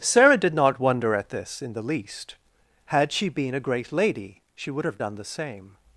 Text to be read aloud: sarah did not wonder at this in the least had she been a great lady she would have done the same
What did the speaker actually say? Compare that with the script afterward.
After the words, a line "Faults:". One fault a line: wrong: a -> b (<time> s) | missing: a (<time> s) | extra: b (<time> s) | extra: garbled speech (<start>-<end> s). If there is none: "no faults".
sarah did not wonder at this in the least had she been a great lady she would have done the same
Faults:
no faults